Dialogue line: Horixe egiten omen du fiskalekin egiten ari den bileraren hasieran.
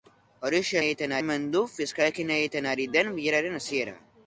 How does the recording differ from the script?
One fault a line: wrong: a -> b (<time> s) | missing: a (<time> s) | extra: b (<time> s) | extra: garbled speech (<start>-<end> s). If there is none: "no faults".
no faults